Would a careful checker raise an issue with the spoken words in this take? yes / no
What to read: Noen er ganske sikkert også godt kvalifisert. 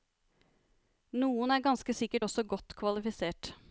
no